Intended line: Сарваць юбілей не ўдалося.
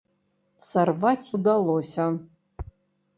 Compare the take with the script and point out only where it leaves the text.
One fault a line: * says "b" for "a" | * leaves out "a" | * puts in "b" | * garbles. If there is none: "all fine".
* leaves out "юбілей не"